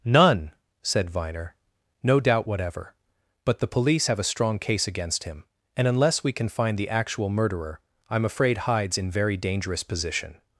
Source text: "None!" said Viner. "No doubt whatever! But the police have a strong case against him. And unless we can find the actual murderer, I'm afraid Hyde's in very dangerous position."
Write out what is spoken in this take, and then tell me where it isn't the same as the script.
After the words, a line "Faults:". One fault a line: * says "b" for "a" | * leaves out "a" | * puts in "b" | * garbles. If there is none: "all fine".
"None!" said Viner. "No doubt whatever! But the police have a strong case against him. And unless we can find the actual murderer, I'm afraid Hyde's in very dangerous position."
Faults:
all fine